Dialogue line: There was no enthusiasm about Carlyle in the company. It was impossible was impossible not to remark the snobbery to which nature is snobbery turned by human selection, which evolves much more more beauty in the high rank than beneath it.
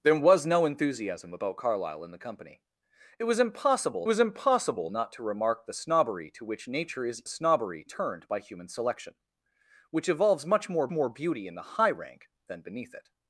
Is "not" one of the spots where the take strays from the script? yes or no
no